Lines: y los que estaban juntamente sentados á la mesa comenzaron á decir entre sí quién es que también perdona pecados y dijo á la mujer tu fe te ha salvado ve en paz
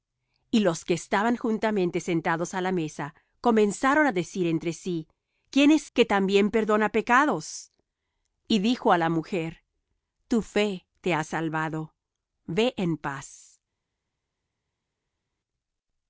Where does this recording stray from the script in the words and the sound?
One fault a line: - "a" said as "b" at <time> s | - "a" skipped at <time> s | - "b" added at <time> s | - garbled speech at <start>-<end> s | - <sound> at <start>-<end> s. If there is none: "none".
none